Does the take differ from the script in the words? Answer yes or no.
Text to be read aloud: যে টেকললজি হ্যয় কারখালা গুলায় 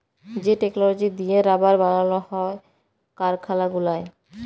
yes